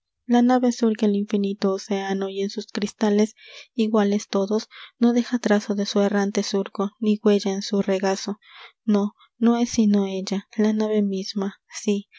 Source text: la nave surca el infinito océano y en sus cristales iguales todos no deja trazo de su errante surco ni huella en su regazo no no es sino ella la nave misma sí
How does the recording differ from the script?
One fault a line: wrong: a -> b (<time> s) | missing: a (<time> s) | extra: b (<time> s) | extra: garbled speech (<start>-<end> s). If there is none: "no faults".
no faults